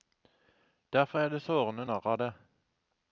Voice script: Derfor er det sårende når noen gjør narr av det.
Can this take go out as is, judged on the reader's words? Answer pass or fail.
fail